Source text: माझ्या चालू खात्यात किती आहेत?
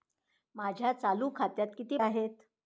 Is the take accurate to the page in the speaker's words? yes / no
yes